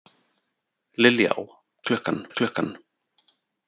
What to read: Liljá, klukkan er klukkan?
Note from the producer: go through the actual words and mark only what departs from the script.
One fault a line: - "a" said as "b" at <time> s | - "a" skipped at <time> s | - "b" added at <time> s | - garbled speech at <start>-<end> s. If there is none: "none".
none